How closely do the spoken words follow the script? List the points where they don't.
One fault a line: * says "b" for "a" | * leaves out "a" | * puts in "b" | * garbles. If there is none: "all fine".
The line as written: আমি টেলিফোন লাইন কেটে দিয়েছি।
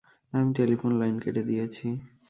all fine